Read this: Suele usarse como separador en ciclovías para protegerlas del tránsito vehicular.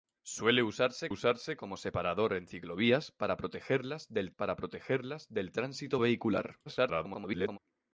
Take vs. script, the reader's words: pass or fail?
fail